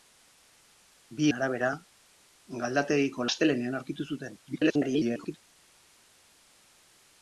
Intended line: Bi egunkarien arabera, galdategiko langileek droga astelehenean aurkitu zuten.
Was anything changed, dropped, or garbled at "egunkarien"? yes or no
yes